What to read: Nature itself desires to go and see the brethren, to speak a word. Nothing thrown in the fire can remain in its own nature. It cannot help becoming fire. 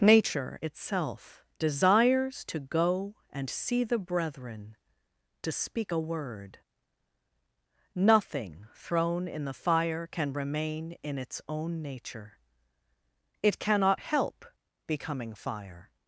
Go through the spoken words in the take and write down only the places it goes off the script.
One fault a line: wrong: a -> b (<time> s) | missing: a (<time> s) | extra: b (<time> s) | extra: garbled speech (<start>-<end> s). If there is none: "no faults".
no faults